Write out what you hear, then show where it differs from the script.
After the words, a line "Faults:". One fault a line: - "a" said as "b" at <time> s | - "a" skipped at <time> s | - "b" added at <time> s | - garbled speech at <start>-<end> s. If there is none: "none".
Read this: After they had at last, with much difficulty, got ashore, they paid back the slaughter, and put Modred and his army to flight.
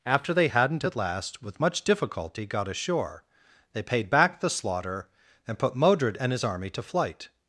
After they hadn't at last, with much difficulty, got ashore, they paid back the slaughter, and put Modred and his army to flight.
Faults:
- "had" said as "hadn't" at 0.4 s